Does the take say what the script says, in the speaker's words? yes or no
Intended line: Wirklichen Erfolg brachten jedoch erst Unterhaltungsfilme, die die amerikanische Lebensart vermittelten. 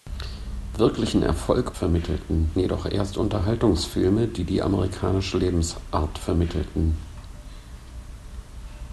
no